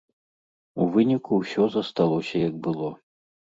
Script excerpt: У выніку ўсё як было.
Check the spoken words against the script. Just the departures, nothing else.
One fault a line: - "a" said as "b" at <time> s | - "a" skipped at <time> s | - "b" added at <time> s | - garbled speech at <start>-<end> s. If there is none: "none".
- "засталося" added at 1.8 s